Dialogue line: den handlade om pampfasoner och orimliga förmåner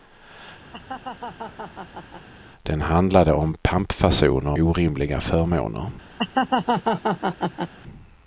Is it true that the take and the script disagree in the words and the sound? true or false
true